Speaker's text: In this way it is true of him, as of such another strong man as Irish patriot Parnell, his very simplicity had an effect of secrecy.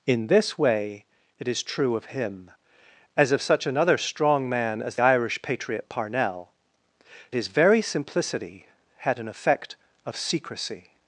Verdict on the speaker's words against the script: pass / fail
pass